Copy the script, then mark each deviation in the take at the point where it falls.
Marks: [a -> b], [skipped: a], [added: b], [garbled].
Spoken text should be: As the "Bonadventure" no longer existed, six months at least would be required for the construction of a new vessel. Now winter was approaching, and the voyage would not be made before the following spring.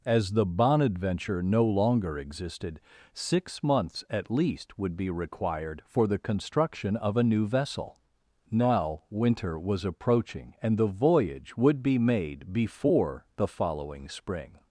As the "Bonadventure" no longer existed, six months at least would be required for the construction of a new vessel. Now winter was approaching, and the voyage would [skipped: not] be made before the following spring.